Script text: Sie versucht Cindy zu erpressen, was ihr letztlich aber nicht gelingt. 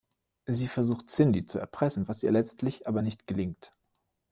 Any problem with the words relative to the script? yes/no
no